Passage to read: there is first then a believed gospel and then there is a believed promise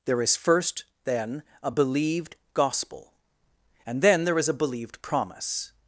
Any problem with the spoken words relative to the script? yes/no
no